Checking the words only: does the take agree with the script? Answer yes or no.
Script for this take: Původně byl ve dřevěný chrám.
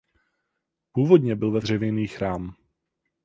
yes